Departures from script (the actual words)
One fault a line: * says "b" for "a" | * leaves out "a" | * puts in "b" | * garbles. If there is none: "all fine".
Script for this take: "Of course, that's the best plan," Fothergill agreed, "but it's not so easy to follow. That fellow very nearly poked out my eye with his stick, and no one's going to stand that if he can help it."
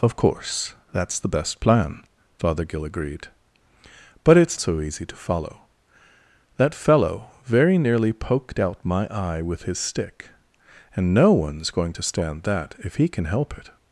* leaves out "not"